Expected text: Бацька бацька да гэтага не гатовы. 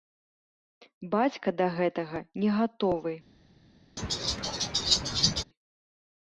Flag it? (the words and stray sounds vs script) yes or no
yes